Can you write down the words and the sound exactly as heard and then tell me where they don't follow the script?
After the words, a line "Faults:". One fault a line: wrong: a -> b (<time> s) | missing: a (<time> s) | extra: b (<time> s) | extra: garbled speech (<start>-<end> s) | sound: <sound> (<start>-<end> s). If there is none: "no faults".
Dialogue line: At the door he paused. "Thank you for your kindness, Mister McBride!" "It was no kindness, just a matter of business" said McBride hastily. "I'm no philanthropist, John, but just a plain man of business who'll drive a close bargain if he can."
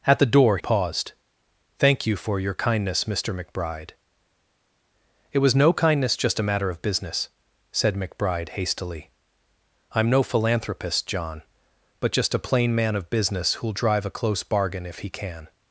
At the door paused. "Thank you for your kindness, Mister McBride!" "It was no kindness, just a matter of business" said McBride hastily. "I'm no philanthropist, John, but just a plain man of business who'll drive a close bargain if he can."
Faults:
missing: he (0.6 s)